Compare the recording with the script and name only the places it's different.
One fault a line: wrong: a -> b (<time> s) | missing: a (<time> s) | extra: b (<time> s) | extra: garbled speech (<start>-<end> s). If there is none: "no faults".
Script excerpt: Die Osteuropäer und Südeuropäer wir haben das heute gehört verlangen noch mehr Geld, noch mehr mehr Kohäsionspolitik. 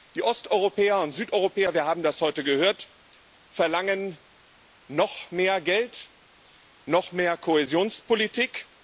missing: mehr (7.4 s)